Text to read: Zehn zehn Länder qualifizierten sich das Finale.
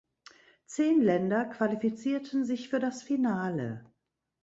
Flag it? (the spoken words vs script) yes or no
yes